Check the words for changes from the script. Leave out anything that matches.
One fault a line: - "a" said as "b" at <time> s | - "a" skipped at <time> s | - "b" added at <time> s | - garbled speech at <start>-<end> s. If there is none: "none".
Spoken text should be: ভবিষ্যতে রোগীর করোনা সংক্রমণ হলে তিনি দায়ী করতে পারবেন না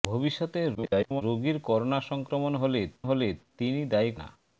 - garbled speech at 0.7-1.2 s
- "হলে" added at 3.0 s
- "করতে পারবেন" skipped at 4.1 s